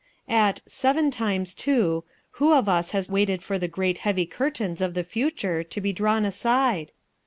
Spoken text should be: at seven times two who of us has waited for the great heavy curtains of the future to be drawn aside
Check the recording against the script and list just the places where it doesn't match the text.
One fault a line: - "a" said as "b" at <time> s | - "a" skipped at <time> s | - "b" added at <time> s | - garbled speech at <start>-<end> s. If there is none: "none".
none